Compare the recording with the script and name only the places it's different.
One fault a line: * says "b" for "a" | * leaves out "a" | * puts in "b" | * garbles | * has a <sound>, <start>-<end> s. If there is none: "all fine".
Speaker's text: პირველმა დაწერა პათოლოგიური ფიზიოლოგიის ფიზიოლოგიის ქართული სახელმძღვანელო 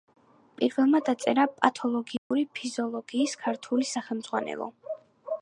* has a dropout, 2.2-2.3 s
* leaves out "ფიზიოლოგიის"